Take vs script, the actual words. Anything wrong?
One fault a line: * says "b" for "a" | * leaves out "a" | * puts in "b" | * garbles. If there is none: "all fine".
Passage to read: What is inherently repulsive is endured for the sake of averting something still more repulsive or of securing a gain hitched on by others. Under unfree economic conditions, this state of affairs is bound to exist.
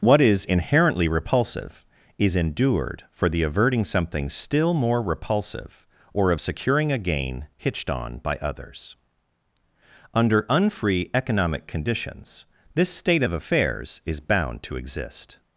* leaves out "sake of"